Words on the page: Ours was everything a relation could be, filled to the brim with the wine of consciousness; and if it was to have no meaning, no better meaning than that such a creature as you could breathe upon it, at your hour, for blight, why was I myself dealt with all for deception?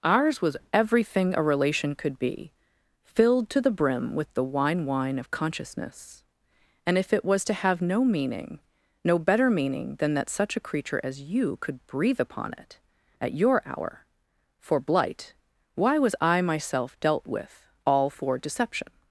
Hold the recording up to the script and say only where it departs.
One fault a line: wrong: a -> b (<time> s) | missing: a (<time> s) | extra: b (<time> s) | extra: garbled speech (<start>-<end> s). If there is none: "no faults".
extra: wine (4.8 s)